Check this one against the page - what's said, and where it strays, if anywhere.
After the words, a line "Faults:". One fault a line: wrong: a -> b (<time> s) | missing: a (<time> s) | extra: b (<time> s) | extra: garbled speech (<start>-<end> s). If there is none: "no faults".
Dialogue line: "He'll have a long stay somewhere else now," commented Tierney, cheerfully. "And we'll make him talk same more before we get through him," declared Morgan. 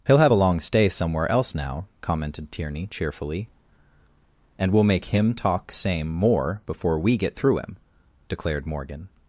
"He'll have a long stay somewhere else now," commented Tierney, cheerfully. "And we'll make him talk same more before we get through him," declared Morgan.
Faults:
no faults